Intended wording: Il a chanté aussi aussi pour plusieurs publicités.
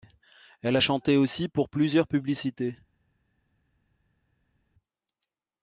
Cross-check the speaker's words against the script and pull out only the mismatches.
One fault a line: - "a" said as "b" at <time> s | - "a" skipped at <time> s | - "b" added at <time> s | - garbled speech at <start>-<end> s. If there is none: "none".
- "Il" said as "Elle" at 0.6 s
- "aussi" skipped at 1.5 s